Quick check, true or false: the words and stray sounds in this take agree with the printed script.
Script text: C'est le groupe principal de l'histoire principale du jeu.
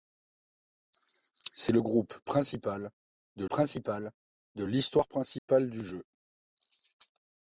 false